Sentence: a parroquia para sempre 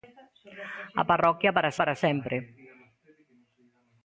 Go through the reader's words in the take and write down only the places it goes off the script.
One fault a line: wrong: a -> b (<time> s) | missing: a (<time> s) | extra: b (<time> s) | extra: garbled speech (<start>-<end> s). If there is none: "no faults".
extra: para (1.8 s)